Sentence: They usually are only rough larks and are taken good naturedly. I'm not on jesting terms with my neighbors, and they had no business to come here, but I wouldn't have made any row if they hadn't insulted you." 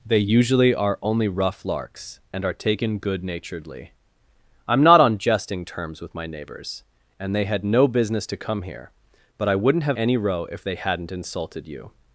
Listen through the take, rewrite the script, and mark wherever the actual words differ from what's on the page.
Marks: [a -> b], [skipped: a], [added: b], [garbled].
They usually are only rough larks and are taken good naturedly. I'm not on jesting terms with my neighbors, and they had no business to come here, but I wouldn't have [skipped: made] any row if they hadn't insulted you."